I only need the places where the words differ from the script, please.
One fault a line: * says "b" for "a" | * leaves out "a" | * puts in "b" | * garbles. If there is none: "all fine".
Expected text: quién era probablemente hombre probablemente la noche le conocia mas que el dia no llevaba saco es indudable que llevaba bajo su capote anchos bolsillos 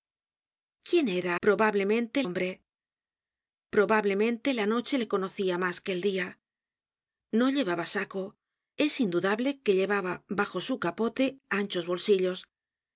all fine